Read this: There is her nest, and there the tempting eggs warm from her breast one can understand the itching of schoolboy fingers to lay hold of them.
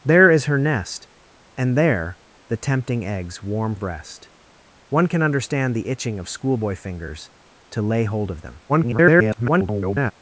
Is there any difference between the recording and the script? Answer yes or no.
yes